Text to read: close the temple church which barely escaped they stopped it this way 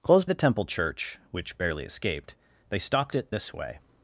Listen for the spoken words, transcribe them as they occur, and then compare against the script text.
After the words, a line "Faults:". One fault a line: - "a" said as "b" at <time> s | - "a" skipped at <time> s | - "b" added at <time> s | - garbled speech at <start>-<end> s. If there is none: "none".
close the temple church which barely escaped they stopped it this way
Faults:
none